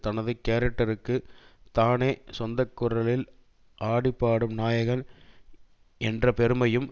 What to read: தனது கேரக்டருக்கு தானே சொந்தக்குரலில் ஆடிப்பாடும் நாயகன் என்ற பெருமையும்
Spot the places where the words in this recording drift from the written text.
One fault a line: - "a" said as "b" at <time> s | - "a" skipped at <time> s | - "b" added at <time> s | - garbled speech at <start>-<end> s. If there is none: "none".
none